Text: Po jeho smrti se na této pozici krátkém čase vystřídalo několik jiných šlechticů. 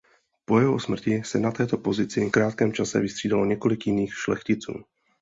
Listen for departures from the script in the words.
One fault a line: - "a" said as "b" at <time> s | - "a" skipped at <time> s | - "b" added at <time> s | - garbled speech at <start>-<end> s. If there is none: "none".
none